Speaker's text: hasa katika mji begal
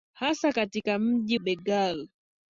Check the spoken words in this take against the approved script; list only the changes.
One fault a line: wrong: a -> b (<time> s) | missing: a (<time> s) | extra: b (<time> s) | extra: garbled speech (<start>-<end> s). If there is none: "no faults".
no faults